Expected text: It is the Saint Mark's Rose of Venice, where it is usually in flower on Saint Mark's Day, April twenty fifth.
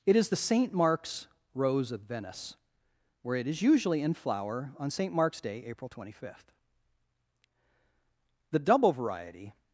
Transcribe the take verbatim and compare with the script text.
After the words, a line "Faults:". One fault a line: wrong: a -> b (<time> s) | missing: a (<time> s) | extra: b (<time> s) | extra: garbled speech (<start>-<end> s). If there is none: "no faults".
It is the Saint Mark's Rose of Venice, where it is usually in flower on Saint Mark's Day, April twenty fifth. The double variety
Faults:
extra: The double variety (8.5 s)